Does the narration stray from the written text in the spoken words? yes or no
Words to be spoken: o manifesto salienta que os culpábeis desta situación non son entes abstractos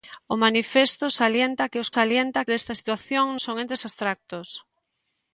yes